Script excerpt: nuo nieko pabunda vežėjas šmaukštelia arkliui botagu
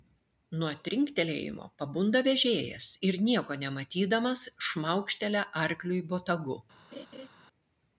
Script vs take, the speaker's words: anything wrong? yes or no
yes